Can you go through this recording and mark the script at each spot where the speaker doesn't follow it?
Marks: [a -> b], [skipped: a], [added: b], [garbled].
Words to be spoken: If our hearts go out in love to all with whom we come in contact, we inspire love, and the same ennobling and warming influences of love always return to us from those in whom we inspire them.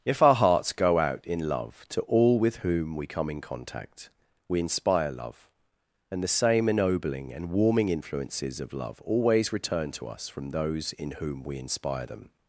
If our hearts go out in love to all with whom we come in contact, we inspire love, and the same ennobling and warming influences of love always return to us from those in whom we inspire them.